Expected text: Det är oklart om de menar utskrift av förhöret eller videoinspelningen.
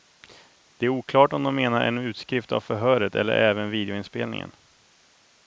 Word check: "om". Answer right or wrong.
right